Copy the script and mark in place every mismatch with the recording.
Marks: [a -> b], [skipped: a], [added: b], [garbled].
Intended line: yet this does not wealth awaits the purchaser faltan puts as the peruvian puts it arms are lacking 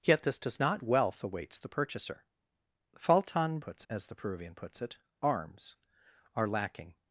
yet this does not wealth awaits the purchaser faltan puts as the peruvian puts it arms are lacking